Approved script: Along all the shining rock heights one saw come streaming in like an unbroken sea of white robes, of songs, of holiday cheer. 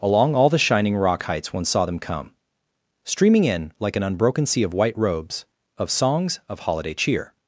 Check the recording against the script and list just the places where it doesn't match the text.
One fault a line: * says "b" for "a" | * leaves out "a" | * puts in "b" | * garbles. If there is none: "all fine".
* puts in "them"